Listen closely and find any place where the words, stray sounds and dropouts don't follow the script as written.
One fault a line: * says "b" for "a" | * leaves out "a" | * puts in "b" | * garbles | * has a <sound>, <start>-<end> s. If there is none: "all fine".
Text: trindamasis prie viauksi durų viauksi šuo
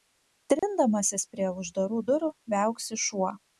* has a dropout, 0.6-0.6 s
* says "uždarų" for "viauksi"